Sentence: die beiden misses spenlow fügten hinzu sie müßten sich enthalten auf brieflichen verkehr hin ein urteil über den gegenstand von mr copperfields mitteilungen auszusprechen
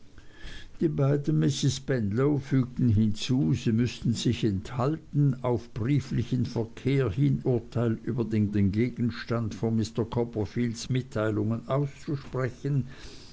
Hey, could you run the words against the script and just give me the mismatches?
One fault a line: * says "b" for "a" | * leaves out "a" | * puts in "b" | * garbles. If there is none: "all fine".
* leaves out "ein"
* puts in "den"